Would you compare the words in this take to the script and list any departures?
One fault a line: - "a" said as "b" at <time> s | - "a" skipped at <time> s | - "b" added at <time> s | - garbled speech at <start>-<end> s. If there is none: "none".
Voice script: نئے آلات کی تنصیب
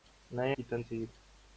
- "آلات" skipped at 0.6 s